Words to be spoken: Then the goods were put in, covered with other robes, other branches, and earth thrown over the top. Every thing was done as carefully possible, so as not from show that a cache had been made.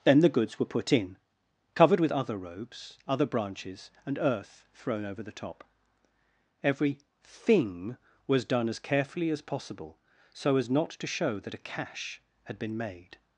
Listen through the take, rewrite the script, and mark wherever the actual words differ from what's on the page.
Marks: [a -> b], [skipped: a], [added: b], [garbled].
Then the goods were put in, covered with other robes, other branches, and earth thrown over the top. Every thing was done as carefully [added: as] possible, so as not [from -> to] show that a cache had been made.